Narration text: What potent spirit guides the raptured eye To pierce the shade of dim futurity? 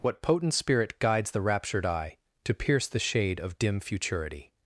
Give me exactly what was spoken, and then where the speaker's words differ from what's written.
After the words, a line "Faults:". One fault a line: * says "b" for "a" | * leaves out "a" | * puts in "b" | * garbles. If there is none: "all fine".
What potent spirit guides the raptured eye To pierce the shade of dim futurity?
Faults:
all fine